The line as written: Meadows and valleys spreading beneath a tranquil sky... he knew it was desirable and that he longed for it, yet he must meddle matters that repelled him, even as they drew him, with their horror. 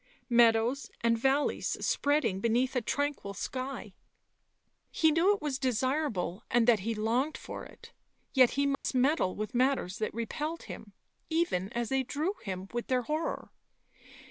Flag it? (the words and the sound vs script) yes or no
yes